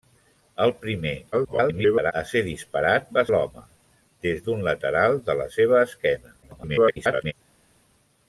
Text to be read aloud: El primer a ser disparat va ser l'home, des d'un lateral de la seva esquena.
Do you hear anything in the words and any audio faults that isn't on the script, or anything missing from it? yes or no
yes